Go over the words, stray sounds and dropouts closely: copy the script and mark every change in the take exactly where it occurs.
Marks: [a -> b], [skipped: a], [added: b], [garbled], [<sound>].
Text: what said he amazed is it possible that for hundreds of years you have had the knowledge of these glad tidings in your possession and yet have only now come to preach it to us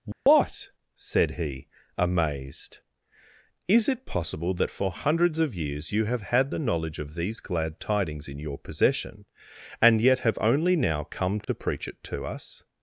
what [dropout] said he amazed is it possible that for hundreds of years you have had the knowledge of these glad tidings in your possession and yet have only now come to [dropout] preach it to us